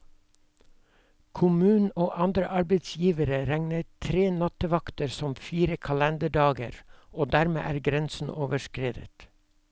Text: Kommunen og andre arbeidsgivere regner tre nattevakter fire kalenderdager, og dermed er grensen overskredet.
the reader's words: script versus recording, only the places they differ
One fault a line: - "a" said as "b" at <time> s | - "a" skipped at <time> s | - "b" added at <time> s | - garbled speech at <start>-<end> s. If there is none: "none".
- "som" added at 5.2 s